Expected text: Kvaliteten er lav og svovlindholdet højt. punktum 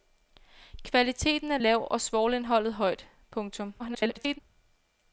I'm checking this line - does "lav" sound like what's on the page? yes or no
yes